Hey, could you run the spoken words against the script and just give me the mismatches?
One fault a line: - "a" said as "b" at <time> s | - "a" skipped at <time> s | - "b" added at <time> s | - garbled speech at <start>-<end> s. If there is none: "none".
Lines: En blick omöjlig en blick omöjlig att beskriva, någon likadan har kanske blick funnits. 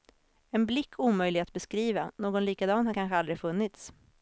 - "en blick omöjlig" skipped at 1.4 s
- "blick" said as "aldrig" at 3.2 s